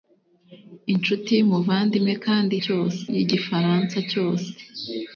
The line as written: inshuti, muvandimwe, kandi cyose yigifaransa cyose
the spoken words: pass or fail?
pass